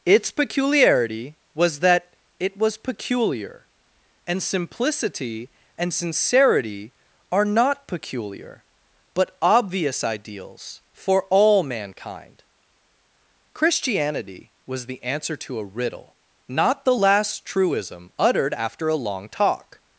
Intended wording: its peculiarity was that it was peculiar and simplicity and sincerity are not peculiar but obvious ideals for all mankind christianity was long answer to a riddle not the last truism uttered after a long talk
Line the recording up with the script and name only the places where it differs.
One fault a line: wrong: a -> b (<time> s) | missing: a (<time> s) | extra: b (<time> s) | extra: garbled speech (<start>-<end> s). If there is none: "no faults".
wrong: long -> the (14.8 s)